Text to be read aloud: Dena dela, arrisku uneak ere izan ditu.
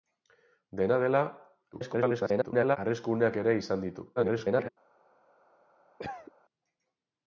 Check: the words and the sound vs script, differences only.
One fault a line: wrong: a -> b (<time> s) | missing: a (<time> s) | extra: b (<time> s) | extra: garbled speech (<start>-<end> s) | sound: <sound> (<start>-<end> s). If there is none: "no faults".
extra: garbled speech (1.7-2.8 s)
extra: garbled speech (4.2-4.7 s)
sound: cough (6.0-6.3 s)